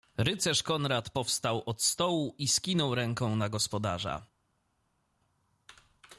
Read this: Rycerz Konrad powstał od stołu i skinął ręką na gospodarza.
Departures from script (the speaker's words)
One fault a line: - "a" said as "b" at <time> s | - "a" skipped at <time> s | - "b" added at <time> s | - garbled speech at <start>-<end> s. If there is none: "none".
none